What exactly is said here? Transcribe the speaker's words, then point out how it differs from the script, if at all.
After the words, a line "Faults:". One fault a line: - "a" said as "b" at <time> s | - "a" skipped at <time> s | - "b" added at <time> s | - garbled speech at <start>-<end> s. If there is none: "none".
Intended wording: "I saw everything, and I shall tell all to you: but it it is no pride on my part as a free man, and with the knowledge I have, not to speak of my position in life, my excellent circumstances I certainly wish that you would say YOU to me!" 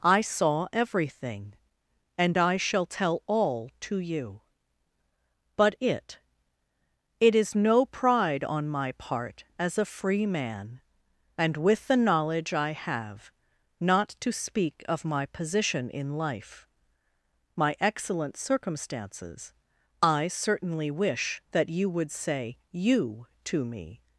"I saw everything, and I shall tell all to you: but it it is no pride on my part as a free man, and with the knowledge I have, not to speak of my position in life, my excellent circumstances I certainly wish that you would say YOU to me!"
Faults:
none